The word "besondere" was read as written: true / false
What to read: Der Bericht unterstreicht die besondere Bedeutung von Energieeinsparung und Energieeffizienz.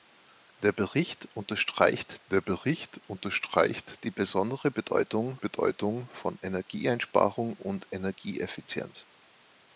true